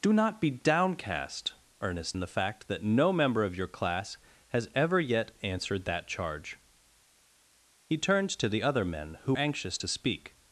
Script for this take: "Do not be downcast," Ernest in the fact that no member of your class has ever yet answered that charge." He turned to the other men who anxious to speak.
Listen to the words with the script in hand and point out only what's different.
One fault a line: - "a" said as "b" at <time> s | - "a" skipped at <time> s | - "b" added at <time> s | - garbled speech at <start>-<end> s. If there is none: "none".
none